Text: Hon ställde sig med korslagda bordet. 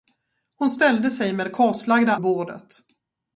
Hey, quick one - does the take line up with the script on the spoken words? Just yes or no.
yes